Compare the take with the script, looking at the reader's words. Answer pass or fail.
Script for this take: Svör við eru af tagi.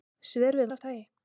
pass